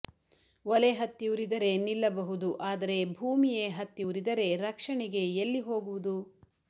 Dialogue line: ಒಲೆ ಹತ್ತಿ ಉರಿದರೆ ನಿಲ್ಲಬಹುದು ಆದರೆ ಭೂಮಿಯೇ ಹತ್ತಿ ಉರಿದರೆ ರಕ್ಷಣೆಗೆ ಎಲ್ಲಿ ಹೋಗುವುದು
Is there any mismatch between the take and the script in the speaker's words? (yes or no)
no